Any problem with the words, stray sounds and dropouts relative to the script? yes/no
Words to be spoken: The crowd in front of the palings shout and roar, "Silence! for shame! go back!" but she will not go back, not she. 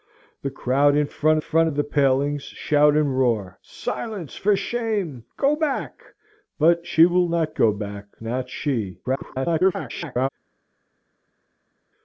yes